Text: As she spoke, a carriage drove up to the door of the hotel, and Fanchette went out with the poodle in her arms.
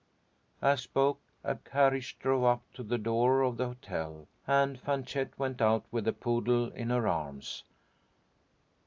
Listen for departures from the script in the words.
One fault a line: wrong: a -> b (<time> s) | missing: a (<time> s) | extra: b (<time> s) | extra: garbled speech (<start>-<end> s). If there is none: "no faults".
missing: she (0.8 s)